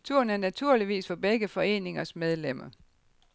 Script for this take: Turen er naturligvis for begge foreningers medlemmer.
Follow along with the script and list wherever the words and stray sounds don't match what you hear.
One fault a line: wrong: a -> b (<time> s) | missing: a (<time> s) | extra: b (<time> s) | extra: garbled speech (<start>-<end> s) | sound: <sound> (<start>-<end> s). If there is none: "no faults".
no faults